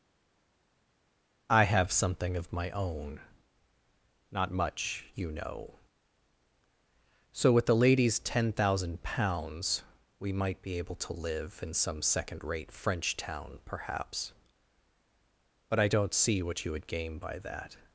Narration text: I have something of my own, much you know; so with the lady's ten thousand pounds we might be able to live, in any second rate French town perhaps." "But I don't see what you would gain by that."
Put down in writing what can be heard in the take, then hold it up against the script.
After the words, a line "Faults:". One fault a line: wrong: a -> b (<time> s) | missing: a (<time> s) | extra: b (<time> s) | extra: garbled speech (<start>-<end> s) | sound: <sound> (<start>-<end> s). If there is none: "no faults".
I have something of my own, not much you know; so with the lady's ten thousand pounds we might be able to live, in some second rate French town perhaps." "But I don't see what you would gain by that."
Faults:
extra: not (4.3 s)
wrong: any -> some (11.7 s)